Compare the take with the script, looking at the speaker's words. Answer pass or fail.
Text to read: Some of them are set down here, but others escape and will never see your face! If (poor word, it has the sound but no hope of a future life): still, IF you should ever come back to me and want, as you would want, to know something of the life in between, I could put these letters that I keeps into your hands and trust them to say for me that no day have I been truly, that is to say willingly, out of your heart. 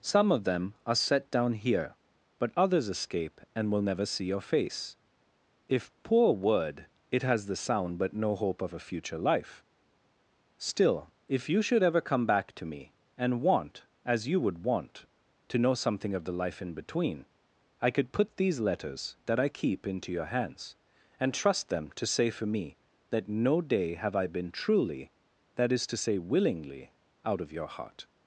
fail